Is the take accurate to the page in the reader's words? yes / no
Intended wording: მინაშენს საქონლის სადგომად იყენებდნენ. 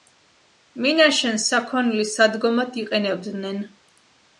yes